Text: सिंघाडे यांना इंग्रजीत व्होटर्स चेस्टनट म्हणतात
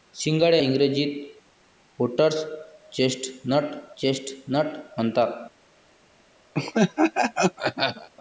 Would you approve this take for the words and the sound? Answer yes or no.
no